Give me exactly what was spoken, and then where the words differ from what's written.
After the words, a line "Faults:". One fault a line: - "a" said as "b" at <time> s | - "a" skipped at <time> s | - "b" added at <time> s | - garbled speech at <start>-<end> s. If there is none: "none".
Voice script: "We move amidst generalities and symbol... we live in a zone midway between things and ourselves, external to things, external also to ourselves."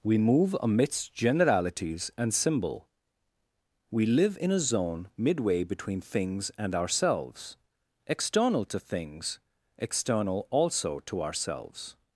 "We move amidst generalities and symbol... we live in a zone midway between things and ourselves, external to things, external also to ourselves."
Faults:
none